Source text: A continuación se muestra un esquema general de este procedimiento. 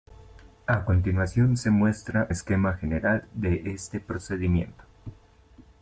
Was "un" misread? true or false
true